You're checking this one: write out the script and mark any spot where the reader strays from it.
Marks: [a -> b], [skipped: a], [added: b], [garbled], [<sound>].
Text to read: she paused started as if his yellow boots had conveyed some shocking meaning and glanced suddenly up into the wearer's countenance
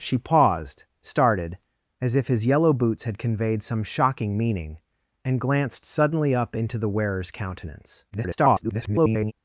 she paused started as if his yellow boots had conveyed some shocking meaning and glanced suddenly up into the wearer's countenance [garbled]